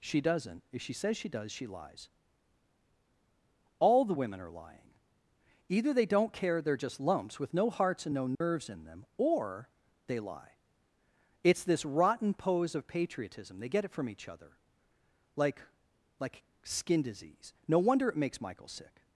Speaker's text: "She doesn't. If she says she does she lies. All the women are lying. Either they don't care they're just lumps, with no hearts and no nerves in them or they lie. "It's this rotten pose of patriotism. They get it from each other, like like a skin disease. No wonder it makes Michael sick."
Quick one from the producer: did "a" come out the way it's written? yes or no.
no